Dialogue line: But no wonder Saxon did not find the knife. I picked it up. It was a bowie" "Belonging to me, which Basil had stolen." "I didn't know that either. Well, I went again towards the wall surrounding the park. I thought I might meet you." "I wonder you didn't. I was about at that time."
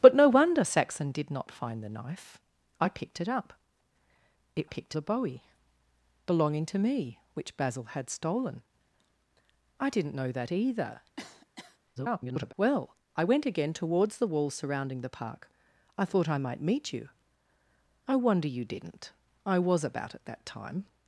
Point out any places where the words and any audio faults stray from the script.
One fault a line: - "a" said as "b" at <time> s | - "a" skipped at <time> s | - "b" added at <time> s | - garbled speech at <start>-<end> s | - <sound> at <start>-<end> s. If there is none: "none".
- "was" said as "picked" at 4.6 s
- cough at 11.2-11.8 s
- garbled speech at 12.0-12.5 s